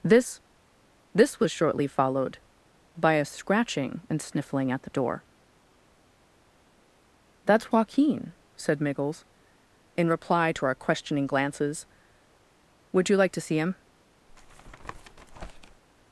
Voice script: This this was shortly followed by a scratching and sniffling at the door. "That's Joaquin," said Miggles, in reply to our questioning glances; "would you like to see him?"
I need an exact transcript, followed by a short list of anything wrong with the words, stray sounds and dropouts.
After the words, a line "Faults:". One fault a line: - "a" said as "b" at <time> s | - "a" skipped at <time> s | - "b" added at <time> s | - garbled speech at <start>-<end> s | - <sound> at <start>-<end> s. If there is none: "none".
This this was shortly followed by a scratching and sniffling at the door. "That's Joaquin," said Miggles, in reply to our questioning glances; "would you like to see him?"
Faults:
- tap at 14.3-15.8 s